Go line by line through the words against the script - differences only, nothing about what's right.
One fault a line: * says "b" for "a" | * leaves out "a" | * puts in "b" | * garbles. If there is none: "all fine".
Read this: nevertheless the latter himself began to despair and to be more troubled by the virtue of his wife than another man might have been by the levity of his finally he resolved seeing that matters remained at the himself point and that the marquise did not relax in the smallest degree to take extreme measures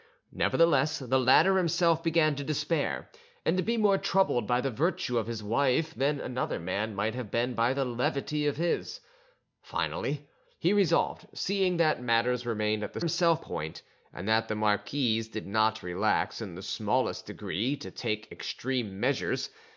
all fine